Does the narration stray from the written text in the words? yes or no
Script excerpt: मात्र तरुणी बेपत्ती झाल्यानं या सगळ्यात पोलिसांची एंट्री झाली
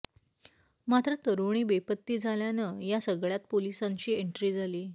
no